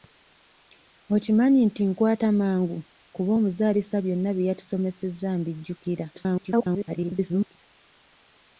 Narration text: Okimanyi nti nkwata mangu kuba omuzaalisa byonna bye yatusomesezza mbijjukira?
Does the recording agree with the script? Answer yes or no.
no